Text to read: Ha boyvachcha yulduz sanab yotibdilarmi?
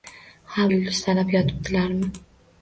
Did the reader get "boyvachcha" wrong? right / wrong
wrong